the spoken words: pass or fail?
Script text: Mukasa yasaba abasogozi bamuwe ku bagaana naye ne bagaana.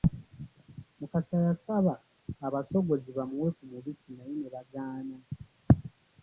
fail